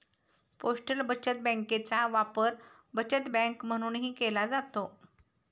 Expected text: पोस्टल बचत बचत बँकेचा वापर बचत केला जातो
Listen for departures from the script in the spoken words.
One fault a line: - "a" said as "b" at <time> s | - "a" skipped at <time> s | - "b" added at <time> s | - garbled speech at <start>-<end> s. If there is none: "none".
- "बचत" skipped at 1.4 s
- "बँक म्हणूनही" added at 3.3 s